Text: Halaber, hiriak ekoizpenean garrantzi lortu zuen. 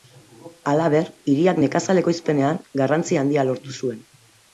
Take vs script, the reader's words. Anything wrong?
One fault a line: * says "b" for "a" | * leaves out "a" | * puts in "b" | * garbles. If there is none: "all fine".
* puts in "nekazal"
* puts in "handia"